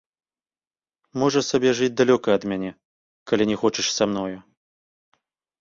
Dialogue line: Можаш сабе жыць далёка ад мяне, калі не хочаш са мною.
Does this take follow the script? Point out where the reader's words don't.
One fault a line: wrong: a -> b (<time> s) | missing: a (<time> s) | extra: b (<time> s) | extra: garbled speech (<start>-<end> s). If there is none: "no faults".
no faults